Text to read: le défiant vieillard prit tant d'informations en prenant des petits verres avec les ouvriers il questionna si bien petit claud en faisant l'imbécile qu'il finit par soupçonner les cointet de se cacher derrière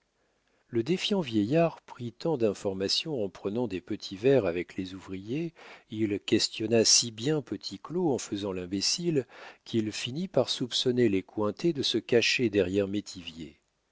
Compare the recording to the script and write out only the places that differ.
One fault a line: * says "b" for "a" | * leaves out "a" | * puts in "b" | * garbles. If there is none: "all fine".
all fine